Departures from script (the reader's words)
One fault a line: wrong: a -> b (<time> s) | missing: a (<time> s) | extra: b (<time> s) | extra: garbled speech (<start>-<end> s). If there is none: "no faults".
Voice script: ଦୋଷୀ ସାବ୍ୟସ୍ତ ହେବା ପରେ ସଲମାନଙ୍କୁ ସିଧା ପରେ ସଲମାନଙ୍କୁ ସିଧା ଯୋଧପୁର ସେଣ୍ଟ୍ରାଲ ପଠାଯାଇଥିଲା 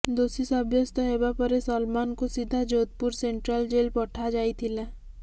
missing: ପରେ ସଲମାନଙ୍କୁ ସିଧା (2.6 s)
extra: ଜେଲ୍ (3.7 s)